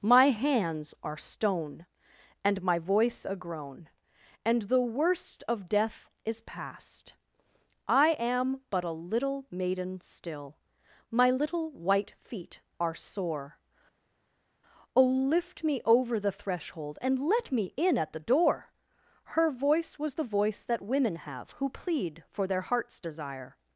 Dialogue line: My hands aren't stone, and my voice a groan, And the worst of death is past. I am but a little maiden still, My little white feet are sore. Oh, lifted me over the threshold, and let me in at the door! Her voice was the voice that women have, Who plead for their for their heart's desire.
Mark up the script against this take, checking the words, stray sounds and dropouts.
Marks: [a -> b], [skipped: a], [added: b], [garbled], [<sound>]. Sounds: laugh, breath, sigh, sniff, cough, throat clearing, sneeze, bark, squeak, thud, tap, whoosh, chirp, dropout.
My hands [aren't -> are] stone, and my voice a groan, And the worst of death is past. I am but a little maiden still, My little white feet are sore. Oh, [lifted -> lift] me over the threshold, and let me in at the door! Her voice was the voice that women have, Who plead for their [skipped: for their] heart's desire.